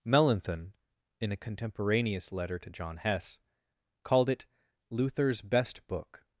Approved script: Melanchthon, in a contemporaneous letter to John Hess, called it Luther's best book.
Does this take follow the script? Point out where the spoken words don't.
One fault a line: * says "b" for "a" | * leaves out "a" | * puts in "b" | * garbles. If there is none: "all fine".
all fine